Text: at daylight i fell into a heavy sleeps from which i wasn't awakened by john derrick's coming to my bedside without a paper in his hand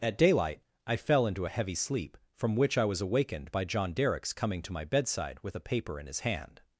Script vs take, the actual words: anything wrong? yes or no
yes